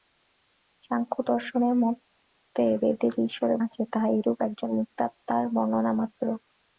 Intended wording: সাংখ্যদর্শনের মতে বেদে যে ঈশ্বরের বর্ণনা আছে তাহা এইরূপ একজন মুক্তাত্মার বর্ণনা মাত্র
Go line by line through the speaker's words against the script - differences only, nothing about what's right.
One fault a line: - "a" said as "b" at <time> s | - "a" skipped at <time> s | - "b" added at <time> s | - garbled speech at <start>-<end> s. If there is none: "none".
- "বর্ণনা" skipped at 3.6 s